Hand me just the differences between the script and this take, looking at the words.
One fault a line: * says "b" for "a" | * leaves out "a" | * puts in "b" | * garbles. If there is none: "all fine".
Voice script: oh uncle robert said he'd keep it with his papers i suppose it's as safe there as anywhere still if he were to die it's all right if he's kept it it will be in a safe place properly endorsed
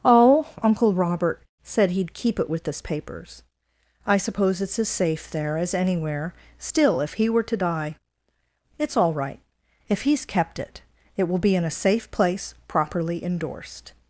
* says "this" for "his"